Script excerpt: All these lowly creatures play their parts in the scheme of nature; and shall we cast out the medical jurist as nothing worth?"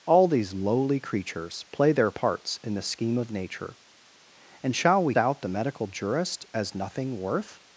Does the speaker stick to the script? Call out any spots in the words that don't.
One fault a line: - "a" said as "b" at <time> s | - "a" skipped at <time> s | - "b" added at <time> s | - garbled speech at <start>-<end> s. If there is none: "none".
- "cast" skipped at 5.1 s